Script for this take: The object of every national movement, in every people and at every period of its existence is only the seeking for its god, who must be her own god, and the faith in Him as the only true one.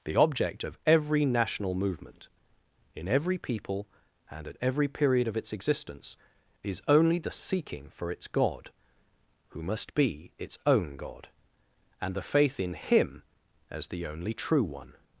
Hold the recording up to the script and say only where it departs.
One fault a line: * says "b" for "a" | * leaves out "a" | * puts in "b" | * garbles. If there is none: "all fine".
* says "its" for "her"